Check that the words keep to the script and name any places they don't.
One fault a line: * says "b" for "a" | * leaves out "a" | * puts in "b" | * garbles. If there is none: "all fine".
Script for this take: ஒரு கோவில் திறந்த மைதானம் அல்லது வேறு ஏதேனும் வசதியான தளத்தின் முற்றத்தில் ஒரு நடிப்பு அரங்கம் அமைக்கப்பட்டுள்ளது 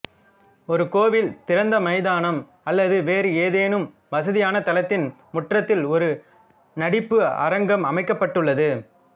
all fine